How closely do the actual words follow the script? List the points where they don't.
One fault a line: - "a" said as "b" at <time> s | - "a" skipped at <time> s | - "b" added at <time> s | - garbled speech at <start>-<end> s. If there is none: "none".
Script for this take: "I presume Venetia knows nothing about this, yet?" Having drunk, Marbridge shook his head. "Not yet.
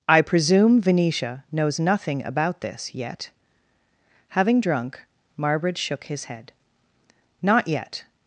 none